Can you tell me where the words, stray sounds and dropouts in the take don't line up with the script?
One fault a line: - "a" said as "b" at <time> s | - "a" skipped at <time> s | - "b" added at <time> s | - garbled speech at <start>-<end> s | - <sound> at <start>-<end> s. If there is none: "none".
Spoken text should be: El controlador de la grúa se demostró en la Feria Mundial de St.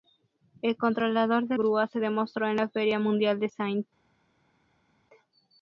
- "la" skipped at 1.6 s